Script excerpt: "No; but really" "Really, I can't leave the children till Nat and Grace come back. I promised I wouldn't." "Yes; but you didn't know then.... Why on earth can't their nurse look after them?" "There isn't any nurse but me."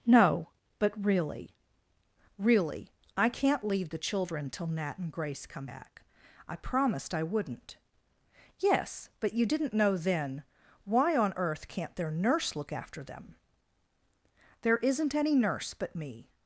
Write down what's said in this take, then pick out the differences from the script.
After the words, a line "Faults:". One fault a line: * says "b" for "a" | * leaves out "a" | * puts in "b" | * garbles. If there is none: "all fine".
"No; but really" "Really, I can't leave the children till Nat and Grace come back. I promised I wouldn't." "Yes; but you didn't know then.... Why on earth can't their nurse look after them?" "There isn't any nurse but me."
Faults:
all fine